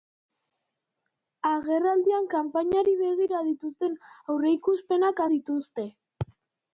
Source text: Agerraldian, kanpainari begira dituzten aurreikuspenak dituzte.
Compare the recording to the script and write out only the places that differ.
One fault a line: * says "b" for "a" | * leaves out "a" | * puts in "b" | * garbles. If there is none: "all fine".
all fine